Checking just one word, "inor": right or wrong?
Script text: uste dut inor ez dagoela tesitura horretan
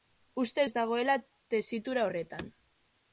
wrong